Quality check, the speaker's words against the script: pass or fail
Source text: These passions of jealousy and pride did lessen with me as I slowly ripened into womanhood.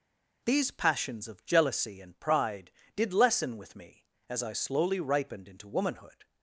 pass